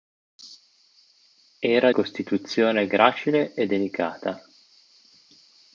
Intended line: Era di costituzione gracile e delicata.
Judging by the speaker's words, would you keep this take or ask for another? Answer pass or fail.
fail